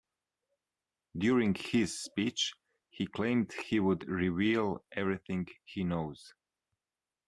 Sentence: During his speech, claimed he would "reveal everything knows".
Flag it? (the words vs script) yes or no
yes